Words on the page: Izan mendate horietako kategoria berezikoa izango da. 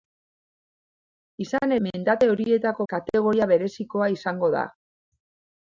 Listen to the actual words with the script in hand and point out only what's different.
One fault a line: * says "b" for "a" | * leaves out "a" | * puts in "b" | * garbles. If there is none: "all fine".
all fine